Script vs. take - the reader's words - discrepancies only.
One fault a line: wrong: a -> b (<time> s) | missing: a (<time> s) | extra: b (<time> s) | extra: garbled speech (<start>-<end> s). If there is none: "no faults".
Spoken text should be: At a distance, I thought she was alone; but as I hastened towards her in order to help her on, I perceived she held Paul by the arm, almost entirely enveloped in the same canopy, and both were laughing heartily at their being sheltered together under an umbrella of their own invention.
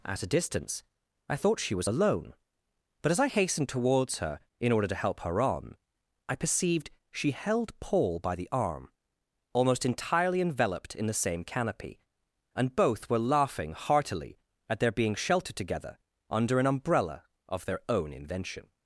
no faults